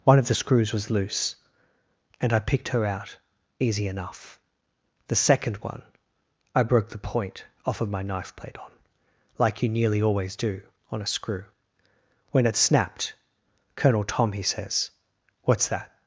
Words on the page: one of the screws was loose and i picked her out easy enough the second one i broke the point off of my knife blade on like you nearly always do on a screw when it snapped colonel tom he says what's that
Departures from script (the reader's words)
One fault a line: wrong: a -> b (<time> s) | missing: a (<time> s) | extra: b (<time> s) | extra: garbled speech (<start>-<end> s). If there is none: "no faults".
no faults